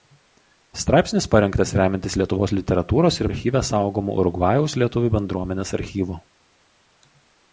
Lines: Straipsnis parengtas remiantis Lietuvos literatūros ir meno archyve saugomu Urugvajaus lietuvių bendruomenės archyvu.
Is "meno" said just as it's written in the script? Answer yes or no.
no